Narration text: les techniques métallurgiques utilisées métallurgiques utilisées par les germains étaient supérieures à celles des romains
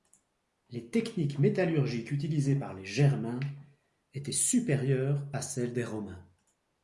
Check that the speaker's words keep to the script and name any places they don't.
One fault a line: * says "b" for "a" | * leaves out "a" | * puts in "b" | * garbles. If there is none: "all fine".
* leaves out "métallurgiques utilisées"